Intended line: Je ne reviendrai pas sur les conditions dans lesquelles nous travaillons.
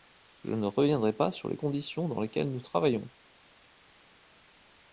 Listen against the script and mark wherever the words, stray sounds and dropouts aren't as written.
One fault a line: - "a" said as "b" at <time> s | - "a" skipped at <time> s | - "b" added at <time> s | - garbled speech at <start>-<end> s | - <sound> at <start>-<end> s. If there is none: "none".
none